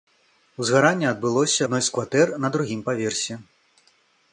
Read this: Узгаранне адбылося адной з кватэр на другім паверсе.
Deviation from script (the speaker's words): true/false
false